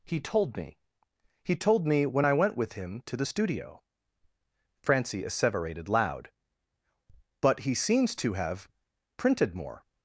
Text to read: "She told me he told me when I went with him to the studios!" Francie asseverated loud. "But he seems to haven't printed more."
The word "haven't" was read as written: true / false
false